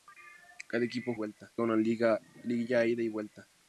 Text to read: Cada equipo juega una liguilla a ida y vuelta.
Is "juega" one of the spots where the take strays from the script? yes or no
yes